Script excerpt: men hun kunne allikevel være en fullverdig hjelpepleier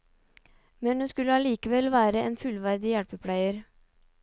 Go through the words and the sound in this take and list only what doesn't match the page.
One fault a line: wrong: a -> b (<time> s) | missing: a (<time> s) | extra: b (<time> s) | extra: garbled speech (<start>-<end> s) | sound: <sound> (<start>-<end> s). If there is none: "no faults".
wrong: kunne -> skulle (1.1 s)